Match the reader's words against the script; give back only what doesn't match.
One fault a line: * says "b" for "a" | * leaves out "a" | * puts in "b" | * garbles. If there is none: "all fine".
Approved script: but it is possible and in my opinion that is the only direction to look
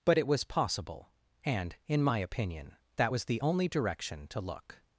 * says "was" for "is"
* says "was" for "is"